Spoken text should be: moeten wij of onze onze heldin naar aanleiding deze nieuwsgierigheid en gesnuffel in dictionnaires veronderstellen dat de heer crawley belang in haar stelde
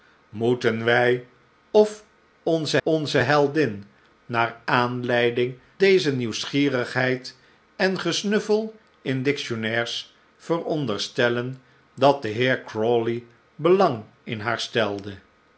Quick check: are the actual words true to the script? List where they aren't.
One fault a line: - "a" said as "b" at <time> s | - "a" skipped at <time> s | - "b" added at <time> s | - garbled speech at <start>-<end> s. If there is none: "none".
none